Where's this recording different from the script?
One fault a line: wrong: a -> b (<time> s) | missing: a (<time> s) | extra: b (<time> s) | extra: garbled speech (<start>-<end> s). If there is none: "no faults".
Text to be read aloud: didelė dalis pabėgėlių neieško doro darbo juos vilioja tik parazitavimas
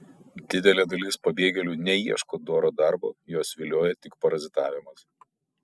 no faults